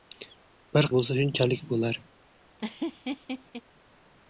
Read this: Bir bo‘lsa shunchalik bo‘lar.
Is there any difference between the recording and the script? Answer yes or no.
no